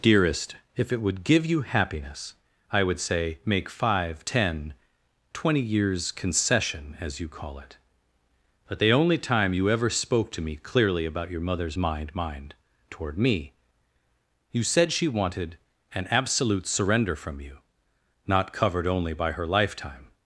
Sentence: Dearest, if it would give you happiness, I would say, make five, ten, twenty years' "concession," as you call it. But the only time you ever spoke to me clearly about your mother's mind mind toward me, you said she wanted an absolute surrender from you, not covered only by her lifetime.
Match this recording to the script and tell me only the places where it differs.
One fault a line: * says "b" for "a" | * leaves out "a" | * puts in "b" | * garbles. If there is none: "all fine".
all fine